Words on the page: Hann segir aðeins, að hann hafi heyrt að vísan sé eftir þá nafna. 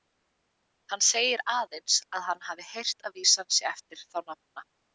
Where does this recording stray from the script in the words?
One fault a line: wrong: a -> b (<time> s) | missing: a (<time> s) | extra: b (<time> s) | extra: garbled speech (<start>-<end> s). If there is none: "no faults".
no faults